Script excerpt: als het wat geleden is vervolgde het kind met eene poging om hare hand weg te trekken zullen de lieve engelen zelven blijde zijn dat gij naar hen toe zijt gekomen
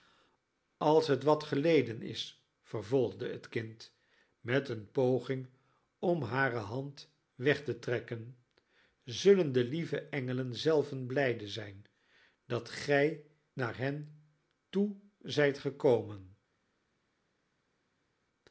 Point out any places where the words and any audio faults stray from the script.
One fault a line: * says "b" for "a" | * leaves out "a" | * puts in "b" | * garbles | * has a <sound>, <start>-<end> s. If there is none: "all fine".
all fine